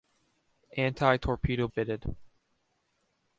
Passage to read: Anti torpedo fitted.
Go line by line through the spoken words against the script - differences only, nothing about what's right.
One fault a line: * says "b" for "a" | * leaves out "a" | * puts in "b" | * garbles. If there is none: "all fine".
all fine